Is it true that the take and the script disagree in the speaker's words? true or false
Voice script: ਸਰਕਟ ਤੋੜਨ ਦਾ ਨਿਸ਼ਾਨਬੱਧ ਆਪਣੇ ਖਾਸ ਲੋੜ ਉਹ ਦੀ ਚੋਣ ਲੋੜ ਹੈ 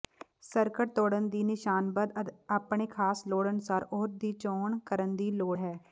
true